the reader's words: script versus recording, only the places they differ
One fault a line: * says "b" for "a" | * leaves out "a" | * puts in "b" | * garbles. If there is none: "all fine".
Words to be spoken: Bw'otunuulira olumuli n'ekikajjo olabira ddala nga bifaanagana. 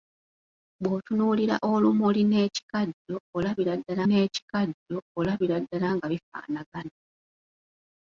* puts in "n'ekikajjo olabira ddala"